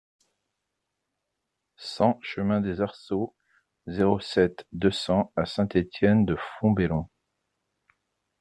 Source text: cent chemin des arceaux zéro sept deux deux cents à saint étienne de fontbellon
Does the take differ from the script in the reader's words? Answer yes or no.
yes